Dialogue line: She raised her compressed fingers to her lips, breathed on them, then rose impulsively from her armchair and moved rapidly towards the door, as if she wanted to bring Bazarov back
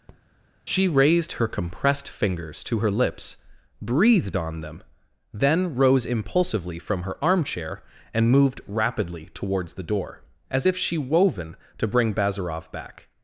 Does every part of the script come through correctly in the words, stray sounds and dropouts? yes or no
no